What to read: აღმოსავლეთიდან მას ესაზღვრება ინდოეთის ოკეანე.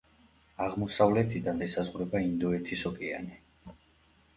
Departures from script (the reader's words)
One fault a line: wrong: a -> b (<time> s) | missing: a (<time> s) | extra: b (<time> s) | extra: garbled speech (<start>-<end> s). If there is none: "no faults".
missing: მას (1.6 s)